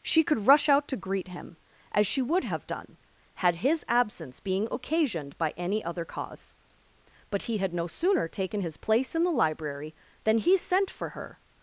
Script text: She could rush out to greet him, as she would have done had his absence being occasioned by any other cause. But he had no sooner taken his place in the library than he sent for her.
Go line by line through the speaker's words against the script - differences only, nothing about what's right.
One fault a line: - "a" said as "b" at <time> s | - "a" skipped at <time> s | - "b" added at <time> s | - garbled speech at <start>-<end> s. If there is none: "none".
none